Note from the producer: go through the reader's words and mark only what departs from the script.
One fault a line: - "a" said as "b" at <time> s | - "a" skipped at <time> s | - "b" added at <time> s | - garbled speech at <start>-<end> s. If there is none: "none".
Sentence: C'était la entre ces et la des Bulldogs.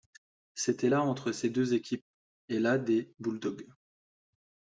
- "deux équipes" added at 1.5 s